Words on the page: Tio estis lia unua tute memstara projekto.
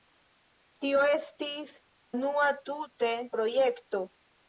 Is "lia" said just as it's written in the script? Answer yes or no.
no